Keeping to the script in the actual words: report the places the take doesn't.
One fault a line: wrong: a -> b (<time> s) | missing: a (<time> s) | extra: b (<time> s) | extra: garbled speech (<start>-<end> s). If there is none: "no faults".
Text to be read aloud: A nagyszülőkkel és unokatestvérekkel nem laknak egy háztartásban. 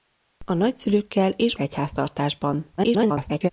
missing: unokatestvérekkel nem laknak (1.6 s)
extra: garbled speech (2.8-3.5 s)